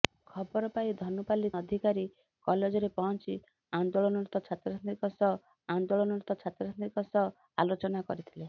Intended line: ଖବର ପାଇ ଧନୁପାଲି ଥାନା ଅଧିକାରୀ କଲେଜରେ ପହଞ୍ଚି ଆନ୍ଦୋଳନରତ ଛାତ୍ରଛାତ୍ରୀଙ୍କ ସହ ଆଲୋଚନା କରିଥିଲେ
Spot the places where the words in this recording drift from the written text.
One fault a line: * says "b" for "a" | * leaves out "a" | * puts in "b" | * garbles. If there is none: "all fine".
* leaves out "ଥାନା"
* puts in "ଆନ୍ଦୋଳନରତ ଛାତ୍ରଛାତ୍ରୀଙ୍କ ସହ"